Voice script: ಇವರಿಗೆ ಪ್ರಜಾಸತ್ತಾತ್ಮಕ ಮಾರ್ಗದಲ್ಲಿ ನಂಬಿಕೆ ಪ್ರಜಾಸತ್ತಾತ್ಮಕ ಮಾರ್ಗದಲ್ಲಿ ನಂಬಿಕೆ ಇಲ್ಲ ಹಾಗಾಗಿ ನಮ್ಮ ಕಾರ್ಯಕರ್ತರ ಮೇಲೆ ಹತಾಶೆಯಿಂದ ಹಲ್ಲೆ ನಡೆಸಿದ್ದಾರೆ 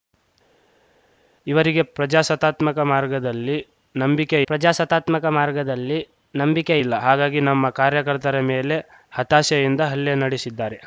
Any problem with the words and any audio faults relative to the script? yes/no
no